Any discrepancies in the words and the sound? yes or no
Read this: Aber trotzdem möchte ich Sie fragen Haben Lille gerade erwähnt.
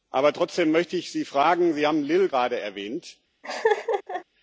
yes